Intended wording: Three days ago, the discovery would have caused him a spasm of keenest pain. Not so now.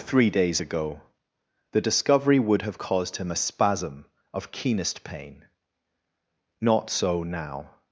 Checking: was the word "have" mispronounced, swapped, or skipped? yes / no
no